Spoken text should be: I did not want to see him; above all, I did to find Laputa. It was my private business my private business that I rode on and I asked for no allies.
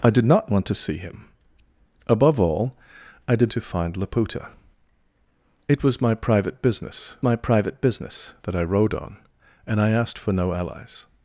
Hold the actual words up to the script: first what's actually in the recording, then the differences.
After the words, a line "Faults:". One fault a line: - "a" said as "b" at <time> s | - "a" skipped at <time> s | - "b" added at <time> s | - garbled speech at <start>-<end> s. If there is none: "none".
I did not want to see him; above all, I did to find Laputa. It was my private business my private business that I rode on and I asked for no allies.
Faults:
none